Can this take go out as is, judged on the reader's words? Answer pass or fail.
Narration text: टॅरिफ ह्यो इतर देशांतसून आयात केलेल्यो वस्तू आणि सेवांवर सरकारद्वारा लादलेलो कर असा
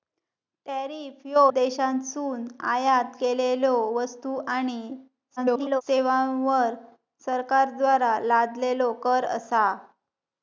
fail